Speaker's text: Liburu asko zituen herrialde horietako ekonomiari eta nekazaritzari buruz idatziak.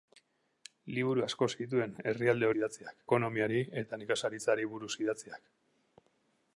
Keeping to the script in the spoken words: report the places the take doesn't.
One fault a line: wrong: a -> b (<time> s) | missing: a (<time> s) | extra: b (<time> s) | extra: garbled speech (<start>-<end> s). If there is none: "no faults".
wrong: horietako -> idatziak (2.6 s)